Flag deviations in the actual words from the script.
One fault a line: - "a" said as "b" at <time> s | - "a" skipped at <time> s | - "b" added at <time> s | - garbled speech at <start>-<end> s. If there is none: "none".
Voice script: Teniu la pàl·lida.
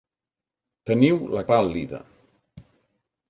none